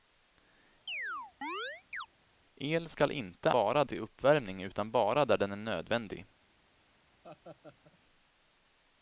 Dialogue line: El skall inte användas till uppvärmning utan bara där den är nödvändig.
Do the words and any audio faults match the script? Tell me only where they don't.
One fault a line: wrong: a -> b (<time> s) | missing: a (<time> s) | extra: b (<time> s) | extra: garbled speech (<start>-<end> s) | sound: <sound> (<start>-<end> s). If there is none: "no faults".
sound: chirp (0.9-2.1 s)
wrong: användas -> bara (3.5 s)
sound: laugh (7.2-8.0 s)